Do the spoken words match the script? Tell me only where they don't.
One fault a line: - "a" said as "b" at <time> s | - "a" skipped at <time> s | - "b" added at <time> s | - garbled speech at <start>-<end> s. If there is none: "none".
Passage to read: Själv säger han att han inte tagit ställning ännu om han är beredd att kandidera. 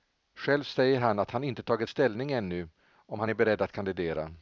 none